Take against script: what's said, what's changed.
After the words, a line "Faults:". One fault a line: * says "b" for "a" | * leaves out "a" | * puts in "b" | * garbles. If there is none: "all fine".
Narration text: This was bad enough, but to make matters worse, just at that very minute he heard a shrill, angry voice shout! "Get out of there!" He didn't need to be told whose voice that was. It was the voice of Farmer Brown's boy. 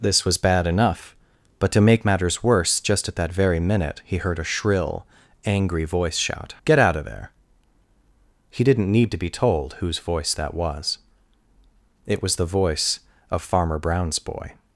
This was bad enough, but to make matters worse, just at that very minute he heard a shrill, angry voice shout! "Get out of there!" He didn't need to be told whose voice that was. It was the voice of Farmer Brown's boy.
Faults:
all fine